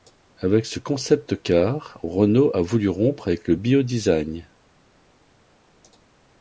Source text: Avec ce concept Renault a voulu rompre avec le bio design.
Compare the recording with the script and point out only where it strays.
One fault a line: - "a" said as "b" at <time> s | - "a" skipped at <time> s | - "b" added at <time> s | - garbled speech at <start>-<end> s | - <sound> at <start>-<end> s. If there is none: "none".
- "car" added at 1.4 s